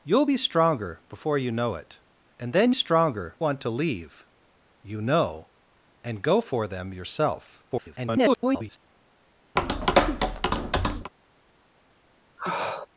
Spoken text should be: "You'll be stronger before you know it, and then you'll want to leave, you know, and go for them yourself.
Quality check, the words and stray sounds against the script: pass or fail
fail